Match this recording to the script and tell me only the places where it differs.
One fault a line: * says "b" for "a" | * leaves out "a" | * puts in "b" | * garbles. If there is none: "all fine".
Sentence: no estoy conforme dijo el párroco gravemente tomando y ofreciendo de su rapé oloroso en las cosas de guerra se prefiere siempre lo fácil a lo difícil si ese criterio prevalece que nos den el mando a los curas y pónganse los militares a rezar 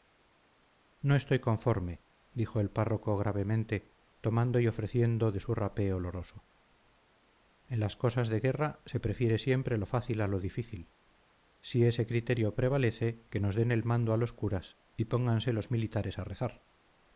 all fine